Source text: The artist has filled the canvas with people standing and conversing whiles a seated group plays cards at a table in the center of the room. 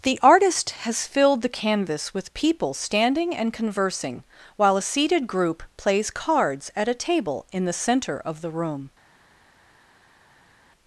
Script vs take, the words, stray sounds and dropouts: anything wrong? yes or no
yes